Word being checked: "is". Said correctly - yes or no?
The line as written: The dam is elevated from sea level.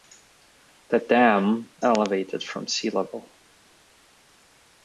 no